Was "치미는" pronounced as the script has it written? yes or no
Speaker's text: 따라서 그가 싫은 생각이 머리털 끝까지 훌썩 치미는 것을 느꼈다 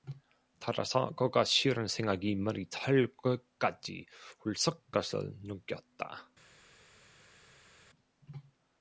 no